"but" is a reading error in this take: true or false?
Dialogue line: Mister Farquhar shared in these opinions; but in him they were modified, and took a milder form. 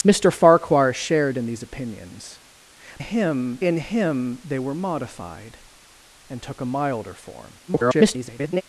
true